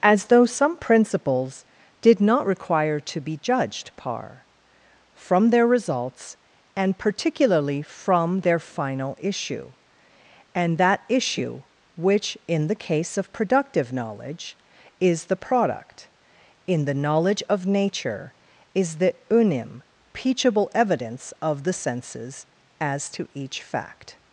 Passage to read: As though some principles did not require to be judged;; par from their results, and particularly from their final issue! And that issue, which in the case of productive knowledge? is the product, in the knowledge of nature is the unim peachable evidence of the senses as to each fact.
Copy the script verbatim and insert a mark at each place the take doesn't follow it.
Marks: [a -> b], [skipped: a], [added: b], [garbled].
As though some principles did not require to be judged;; par from their results, and particularly from their final issue! And that issue, which in the case of productive knowledge? is the product, in the knowledge of nature is the unim peachable evidence of the senses as to each fact.